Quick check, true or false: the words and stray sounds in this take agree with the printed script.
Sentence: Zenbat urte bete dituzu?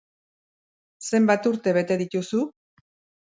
true